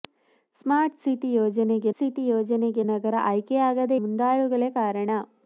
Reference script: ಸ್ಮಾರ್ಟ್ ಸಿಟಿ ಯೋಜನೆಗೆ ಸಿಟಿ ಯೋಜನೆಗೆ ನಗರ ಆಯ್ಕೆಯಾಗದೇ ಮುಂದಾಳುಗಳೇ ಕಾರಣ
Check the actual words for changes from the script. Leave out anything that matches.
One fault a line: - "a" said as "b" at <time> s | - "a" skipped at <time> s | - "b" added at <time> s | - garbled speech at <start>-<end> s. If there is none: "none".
none